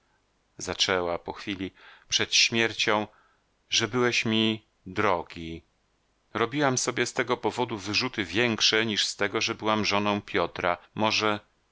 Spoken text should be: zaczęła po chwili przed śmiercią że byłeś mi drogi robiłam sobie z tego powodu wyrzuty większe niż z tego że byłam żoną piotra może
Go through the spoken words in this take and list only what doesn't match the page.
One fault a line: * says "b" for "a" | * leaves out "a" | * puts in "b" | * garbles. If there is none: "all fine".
all fine